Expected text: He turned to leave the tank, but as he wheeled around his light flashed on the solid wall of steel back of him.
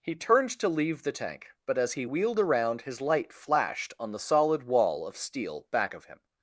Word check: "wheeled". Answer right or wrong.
right